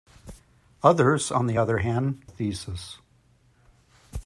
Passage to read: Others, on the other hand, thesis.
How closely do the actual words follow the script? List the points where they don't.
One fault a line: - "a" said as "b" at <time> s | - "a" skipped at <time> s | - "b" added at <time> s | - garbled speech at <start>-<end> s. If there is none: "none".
none